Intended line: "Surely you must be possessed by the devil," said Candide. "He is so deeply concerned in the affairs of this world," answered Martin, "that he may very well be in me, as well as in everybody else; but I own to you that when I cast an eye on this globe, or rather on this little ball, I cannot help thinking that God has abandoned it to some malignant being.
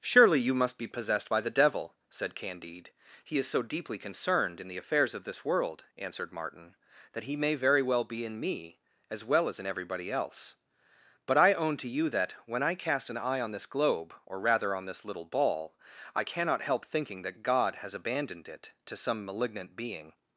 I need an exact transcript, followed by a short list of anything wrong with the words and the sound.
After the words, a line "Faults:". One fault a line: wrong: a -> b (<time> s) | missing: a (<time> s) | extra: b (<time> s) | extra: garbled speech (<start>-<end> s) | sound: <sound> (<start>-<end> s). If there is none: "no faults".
"Surely you must be possessed by the devil," said Candide. "He is so deeply concerned in the affairs of this world," answered Martin, "that he may very well be in me, as well as in everybody else; but I own to you that when I cast an eye on this globe, or rather on this little ball, I cannot help thinking that God has abandoned it to some malignant being.
Faults:
no faults